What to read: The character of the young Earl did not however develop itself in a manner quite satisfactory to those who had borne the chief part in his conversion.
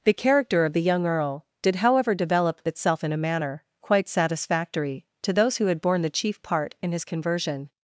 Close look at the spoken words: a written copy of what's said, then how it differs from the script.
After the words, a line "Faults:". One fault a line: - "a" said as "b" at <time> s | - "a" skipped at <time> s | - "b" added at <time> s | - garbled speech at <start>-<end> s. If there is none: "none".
The character of the young Earl did however develop itself in a manner quite satisfactory to those who had borne the chief part in his conversion.
Faults:
- "not" skipped at 1.8 s